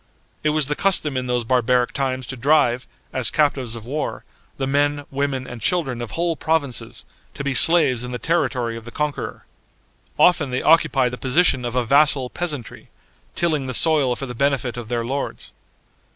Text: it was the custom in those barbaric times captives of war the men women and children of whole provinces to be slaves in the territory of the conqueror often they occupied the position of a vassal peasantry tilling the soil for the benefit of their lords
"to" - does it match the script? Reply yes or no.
yes